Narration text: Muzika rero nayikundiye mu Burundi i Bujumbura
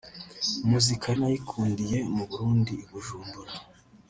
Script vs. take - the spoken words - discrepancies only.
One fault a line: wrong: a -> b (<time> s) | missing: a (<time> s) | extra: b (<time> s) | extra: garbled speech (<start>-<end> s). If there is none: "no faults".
missing: rero (1.1 s)